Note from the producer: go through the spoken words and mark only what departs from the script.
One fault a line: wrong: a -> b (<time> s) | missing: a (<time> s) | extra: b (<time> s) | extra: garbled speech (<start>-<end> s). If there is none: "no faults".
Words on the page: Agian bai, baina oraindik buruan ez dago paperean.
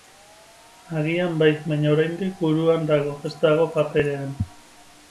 extra: dago (2.9 s)